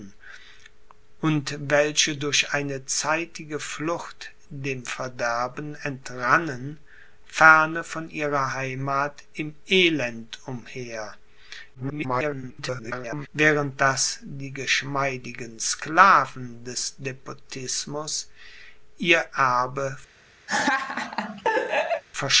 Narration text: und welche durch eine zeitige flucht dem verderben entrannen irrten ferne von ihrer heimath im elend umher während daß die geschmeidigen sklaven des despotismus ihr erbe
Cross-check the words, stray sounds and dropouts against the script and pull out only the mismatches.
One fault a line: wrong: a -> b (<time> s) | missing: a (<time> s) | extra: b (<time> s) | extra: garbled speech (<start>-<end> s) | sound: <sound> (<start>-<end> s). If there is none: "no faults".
missing: irrten (6.8 s)
extra: garbled speech (11.7-13.3 s)
sound: laugh (20.5-22.0 s)